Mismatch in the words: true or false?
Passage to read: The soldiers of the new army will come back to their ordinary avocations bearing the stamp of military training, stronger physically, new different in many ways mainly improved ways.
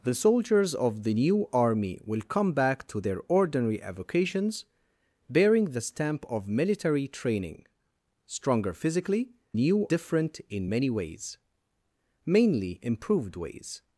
false